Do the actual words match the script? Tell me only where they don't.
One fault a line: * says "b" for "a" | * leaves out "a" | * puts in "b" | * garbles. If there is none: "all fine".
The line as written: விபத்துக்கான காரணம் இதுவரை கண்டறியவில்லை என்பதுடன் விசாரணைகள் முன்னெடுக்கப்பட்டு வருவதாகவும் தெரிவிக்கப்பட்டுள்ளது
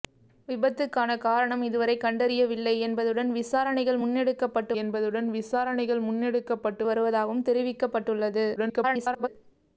* puts in "என்பதுடன் விசாரணைகள் முன்னெடுக்கப்பட்டு"
* garbles